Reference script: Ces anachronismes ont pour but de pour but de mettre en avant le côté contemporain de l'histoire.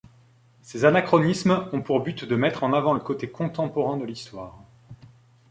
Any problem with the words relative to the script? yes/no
yes